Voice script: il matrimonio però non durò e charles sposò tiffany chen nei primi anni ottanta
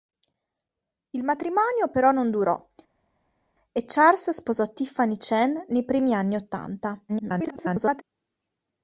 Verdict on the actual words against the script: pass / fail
fail